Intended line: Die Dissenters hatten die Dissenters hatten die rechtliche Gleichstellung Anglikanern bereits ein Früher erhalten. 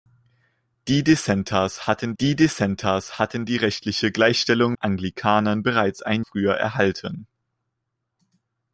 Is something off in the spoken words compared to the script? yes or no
no